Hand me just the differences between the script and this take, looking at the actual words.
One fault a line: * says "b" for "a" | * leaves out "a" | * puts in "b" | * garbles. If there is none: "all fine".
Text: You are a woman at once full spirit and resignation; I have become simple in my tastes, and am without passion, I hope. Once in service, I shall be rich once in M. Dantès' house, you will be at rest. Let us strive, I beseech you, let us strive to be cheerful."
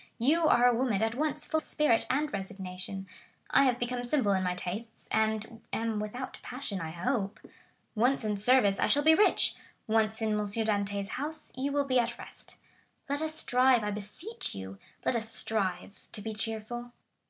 all fine